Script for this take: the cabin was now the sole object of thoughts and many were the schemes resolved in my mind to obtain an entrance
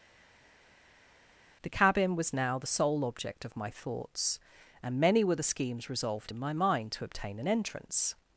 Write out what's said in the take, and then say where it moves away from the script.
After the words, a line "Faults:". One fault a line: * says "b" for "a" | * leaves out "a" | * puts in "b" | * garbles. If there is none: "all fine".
the cabin was now the sole object of my thoughts and many were the schemes resolved in my mind to obtain an entrance
Faults:
* puts in "my"